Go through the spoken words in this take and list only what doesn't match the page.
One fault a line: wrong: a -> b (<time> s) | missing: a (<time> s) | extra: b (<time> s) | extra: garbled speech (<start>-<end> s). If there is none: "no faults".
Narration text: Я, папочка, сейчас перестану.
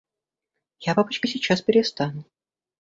no faults